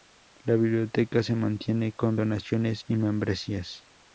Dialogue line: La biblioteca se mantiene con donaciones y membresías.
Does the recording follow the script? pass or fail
pass